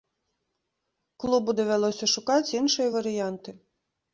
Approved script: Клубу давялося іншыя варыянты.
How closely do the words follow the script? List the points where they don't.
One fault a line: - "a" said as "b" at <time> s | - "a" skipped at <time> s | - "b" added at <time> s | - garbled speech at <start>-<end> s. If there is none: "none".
- "шукаць" added at 2.1 s